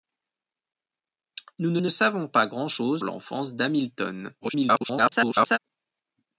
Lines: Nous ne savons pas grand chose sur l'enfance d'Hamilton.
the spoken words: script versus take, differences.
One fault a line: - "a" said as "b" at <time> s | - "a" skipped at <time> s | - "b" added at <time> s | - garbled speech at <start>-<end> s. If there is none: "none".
- "ne" added at 1.8 s
- "sur" skipped at 3.0 s
- garbled speech at 4.4-5.6 s